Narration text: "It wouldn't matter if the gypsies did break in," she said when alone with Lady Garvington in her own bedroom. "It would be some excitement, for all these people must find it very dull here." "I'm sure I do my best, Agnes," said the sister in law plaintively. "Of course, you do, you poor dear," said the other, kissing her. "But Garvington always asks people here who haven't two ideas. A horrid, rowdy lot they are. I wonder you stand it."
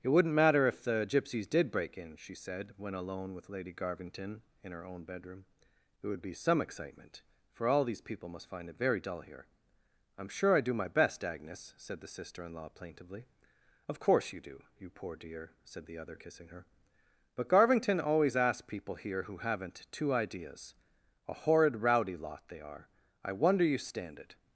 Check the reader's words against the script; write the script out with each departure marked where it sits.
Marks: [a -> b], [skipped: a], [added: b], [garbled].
"It wouldn't matter if the gypsies did break in," she said when alone with Lady Garvington in her own bedroom. "It would be some excitement, for all these people must find it very dull here." "I'm sure I do my best, Agnes," said the sister in law plaintively. "Of course, you do, you poor dear," said the other, kissing her. "But Garvington always asks people here who haven't two ideas. A horrid, rowdy lot they are. I wonder you stand it."